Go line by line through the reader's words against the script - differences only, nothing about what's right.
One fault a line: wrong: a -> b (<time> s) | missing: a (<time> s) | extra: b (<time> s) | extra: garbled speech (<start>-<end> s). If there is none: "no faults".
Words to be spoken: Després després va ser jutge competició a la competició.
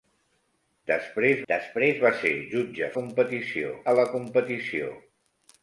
no faults